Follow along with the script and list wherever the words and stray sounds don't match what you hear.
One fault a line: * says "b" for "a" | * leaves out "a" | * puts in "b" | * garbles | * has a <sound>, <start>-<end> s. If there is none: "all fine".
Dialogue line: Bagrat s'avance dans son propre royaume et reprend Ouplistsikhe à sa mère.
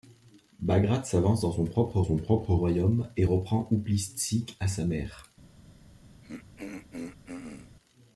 * puts in "son propre"
* has a throat clearing, 6.2-7.8 s